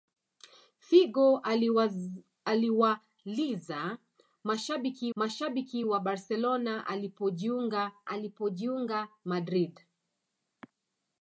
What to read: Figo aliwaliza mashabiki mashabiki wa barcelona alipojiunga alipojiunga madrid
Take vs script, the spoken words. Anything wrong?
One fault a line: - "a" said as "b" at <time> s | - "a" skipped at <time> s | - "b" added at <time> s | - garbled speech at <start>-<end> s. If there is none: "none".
none